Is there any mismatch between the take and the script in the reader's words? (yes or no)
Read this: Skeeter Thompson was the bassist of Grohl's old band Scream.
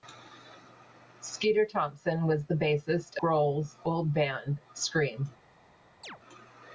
yes